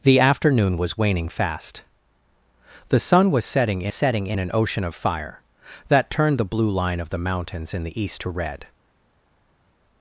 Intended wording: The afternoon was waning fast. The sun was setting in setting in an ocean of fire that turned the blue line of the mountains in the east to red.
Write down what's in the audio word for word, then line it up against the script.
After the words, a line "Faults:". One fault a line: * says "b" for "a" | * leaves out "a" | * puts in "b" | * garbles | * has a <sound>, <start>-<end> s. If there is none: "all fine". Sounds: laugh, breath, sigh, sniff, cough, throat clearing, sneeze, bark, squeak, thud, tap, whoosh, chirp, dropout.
The afternoon was waning fast. The sun was setting in setting in an ocean of fire that turned the blue line of the mountains in the east to red.
Faults:
all fine